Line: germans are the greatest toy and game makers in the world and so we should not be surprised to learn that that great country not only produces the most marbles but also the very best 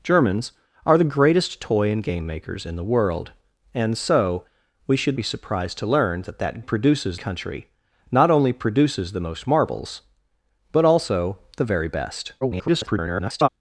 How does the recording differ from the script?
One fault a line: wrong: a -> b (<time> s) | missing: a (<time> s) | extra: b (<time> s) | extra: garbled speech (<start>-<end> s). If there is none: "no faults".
missing: not (5.2 s)
wrong: great -> produces (6.6 s)
extra: garbled speech (12.4-13.5 s)